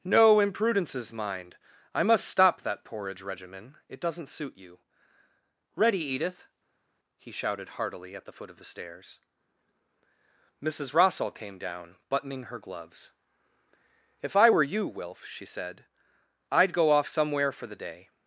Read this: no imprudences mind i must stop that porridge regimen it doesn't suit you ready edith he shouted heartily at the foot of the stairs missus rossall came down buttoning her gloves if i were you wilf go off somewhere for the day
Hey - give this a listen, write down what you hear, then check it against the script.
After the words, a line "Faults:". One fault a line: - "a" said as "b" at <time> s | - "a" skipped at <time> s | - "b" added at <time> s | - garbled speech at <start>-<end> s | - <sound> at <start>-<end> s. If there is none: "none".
no imprudences mind i must stop that porridge regimen it doesn't suit you ready edith he shouted heartily at the foot of the stairs missus rossall came down buttoning her gloves if i were you wilf she said i'd go off somewhere for the day
Faults:
- "she said i'd" added at 15.3 s